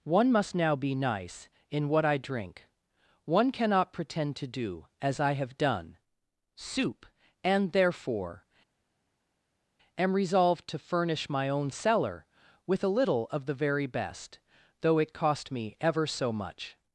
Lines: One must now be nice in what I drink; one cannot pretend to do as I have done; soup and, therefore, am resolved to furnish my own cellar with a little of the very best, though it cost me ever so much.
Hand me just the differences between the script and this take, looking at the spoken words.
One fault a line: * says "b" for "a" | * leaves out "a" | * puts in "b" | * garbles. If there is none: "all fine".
all fine